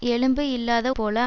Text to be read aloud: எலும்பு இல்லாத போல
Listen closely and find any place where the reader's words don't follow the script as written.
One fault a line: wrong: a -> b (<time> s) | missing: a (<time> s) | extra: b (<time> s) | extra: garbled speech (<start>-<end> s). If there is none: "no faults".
no faults